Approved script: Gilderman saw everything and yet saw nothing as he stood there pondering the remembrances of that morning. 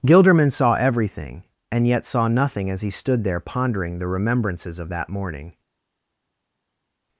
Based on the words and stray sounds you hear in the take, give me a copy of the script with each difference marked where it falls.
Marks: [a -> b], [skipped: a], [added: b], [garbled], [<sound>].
Gilderman saw everything and yet saw nothing as he stood there pondering the remembrances of that morning.